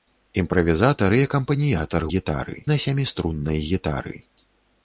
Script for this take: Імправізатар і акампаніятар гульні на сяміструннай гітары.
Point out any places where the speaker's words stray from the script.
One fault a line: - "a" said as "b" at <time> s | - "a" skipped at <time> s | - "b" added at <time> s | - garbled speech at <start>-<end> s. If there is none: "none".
- "гульні" said as "гітары" at 2.1 s